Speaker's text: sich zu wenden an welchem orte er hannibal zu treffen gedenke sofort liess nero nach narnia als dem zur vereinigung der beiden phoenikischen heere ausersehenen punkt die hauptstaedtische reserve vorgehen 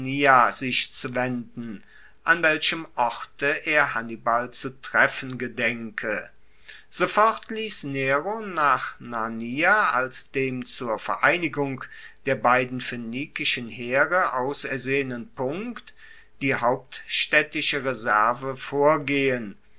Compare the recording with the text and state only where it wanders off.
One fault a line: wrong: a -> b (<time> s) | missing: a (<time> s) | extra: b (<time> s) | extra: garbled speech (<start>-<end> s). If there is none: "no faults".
no faults